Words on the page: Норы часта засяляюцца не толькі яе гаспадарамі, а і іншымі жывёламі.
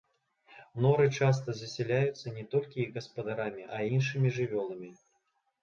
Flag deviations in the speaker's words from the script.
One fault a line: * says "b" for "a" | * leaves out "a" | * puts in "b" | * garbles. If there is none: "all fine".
* says "іх" for "яе"